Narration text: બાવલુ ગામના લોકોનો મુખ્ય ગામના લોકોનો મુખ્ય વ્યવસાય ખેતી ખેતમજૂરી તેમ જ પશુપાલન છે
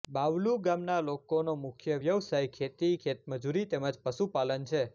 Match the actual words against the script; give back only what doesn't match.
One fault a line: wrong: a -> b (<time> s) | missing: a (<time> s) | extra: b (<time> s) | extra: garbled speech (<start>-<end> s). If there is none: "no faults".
missing: ગામના લોકોનો મુખ્ય (2.0 s)